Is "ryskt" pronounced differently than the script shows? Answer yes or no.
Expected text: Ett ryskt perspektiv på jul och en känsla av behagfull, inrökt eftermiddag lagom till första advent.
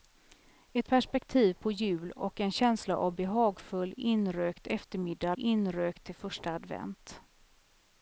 yes